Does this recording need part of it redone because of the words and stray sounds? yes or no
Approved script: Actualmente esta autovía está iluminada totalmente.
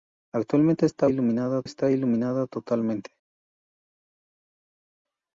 yes